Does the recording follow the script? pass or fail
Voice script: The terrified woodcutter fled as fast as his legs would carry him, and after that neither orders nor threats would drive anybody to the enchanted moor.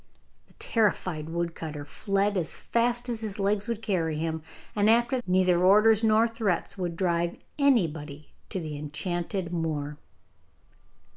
fail